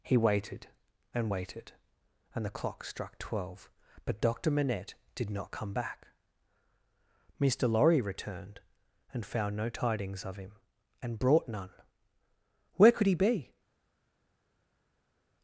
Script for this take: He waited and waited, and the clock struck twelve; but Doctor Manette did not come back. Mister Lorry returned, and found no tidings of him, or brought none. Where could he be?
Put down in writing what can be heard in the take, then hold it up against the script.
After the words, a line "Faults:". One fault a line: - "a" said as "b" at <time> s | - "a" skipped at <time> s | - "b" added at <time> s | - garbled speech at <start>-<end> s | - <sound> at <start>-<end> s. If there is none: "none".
He waited and waited, and the clock struck twelve; but Doctor Manette did not come back. Mister Lorry returned, and found no tidings of him, and brought none. Where could he be?
Faults:
- "or" said as "and" at 11.0 s